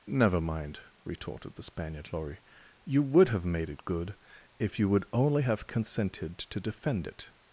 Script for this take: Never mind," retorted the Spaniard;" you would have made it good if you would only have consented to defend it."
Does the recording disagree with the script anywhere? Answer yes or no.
yes